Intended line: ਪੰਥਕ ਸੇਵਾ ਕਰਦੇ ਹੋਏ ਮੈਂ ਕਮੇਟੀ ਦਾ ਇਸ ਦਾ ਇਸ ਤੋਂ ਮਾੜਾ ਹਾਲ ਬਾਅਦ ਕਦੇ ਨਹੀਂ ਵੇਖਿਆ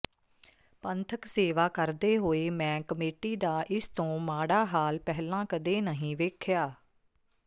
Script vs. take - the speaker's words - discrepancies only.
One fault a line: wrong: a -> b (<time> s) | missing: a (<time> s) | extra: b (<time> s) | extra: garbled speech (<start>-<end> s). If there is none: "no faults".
missing: ਦਾ ਇਸ (3.9 s)
wrong: ਬਾਅਦ -> ਪਹਿਲਾਂ (5.0 s)